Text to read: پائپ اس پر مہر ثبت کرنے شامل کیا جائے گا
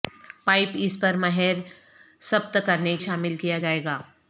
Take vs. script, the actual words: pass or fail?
pass